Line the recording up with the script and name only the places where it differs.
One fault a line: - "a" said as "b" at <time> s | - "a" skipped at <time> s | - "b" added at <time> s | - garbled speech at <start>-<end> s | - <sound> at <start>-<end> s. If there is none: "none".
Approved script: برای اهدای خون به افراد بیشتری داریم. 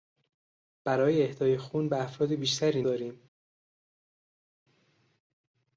none